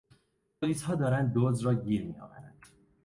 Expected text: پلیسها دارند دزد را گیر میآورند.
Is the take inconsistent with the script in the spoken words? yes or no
no